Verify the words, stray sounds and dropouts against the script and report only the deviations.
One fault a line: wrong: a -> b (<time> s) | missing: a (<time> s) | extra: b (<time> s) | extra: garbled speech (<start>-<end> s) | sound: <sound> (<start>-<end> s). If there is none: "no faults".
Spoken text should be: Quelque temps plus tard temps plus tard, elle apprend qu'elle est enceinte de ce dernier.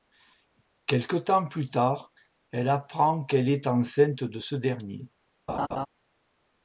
missing: temps plus tard (2.1 s)
sound: laugh (5.5-5.9 s)